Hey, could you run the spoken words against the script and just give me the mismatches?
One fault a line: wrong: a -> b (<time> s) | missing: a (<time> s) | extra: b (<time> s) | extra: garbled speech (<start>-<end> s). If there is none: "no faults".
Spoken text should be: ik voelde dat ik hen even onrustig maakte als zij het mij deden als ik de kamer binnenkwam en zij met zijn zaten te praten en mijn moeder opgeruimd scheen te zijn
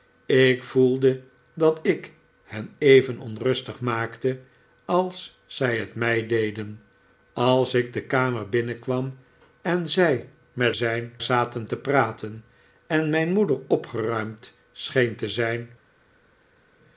no faults